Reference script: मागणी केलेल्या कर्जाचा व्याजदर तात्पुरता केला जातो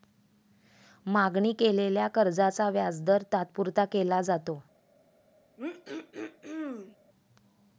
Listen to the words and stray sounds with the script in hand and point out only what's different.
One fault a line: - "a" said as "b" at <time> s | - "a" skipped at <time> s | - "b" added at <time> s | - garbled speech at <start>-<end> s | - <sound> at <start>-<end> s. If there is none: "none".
- throat clearing at 5.6-7.0 s